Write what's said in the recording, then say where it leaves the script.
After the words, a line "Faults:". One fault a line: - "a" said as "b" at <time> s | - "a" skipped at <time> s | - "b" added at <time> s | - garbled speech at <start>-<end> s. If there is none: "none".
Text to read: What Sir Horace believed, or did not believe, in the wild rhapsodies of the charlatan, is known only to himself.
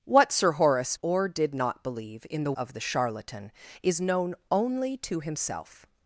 What Sir Horace or did not believe, in the of the charlatan, is known only to himself.
Faults:
- "believed" skipped at 1.0 s
- "wild rhapsodies" skipped at 2.5 s